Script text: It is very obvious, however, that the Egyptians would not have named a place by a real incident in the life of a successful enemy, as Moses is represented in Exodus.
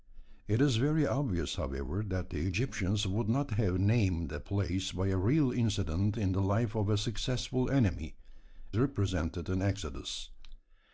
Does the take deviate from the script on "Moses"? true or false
true